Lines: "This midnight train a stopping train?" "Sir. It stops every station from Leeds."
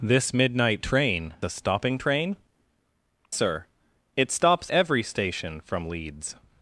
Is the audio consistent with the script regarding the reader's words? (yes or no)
yes